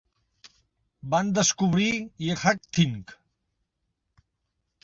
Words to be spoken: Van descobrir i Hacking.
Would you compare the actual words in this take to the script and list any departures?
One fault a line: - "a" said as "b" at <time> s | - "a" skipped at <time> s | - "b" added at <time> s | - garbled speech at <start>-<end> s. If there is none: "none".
none